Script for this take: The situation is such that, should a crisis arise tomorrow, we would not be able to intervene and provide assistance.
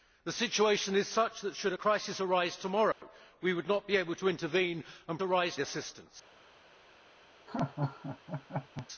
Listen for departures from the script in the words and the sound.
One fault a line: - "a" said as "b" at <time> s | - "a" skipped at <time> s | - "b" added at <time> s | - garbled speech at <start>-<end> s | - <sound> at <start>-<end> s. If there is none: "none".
- dropout at 2.9-3.0 s
- "provide" said as "arise" at 5.2 s
- laugh at 7.5-8.9 s